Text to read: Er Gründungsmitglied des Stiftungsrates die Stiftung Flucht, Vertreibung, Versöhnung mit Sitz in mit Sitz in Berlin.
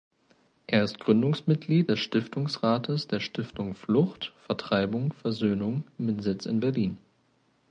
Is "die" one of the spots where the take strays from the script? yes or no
yes